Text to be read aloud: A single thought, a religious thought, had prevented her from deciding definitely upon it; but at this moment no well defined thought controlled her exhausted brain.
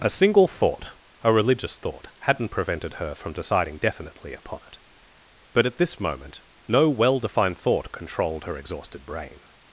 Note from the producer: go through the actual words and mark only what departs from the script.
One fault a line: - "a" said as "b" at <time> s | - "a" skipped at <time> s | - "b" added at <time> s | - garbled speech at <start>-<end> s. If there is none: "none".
- "had" said as "hadn't" at 2.2 s